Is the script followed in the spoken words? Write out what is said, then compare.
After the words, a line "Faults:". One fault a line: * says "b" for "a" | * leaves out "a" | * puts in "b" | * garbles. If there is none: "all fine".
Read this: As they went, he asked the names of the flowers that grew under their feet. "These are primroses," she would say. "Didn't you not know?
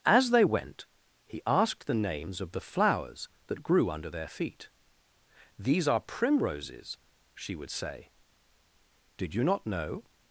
As they went, he asked the names of the flowers that grew under their feet. "These are primroses," she would say. "Did you not know?
Faults:
* says "Did" for "Didn't"